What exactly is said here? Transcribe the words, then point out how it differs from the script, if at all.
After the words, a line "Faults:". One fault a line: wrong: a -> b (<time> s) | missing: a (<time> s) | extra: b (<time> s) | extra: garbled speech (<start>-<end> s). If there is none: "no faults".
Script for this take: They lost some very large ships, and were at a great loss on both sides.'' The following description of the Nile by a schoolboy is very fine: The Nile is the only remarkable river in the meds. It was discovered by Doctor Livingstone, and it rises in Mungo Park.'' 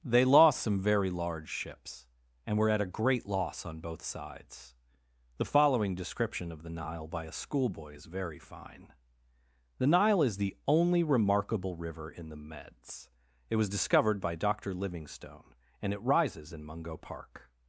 They lost some very large ships, and were at a great loss on both sides.'' The following description of the Nile by a schoolboy is very fine: The Nile is the only remarkable river in the meds. It was discovered by Doctor Livingstone, and it rises in Mungo Park.''
Faults:
no faults